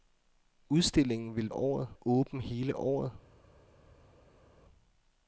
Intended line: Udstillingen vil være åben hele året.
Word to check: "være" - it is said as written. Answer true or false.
false